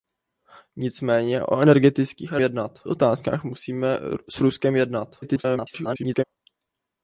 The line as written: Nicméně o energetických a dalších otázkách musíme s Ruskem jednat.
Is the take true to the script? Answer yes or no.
no